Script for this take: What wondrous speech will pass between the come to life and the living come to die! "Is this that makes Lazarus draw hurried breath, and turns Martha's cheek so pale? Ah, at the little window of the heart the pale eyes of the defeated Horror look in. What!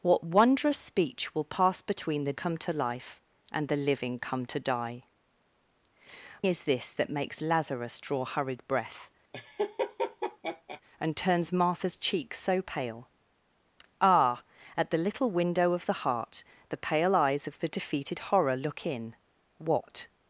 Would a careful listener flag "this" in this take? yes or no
no